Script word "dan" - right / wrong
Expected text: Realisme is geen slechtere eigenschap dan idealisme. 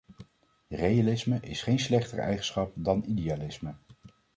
right